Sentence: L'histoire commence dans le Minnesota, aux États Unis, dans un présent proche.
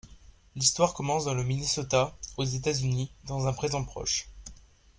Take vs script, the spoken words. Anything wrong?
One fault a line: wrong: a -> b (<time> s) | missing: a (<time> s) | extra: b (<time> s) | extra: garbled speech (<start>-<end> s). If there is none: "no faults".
no faults